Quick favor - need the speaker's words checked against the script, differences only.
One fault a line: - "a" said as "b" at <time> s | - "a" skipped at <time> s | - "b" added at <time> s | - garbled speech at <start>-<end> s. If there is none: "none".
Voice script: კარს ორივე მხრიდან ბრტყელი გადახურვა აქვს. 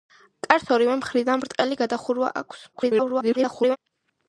- garbled speech at 2.7-3.8 s